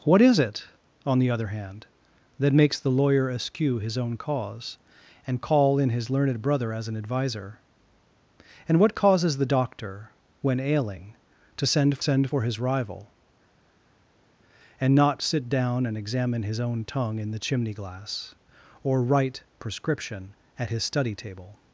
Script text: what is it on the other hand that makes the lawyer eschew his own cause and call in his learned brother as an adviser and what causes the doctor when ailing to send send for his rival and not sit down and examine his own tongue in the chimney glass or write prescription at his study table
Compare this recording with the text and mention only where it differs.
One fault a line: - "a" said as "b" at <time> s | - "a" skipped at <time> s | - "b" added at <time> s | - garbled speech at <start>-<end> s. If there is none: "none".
none